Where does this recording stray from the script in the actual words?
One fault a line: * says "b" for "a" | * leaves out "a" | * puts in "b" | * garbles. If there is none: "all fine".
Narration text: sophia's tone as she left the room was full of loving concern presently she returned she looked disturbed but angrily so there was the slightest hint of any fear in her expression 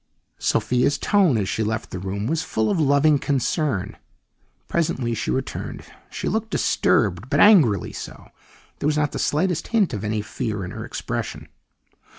* puts in "not"